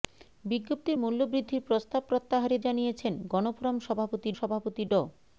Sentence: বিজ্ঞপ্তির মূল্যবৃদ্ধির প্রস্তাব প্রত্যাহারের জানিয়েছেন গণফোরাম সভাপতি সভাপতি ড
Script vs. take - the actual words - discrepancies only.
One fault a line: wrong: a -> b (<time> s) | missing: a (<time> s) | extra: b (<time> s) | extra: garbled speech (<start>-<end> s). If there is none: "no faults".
no faults